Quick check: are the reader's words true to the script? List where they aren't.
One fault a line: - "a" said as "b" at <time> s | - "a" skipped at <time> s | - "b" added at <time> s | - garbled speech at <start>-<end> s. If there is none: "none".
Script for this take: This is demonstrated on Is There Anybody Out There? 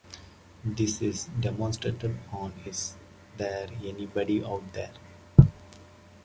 none